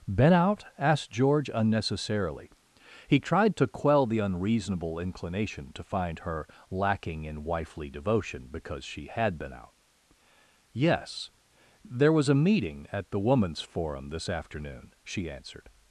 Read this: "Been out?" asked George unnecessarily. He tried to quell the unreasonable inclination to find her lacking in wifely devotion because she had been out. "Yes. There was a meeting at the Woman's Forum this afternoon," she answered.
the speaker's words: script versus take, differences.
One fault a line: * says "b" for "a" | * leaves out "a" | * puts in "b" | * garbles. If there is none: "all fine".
all fine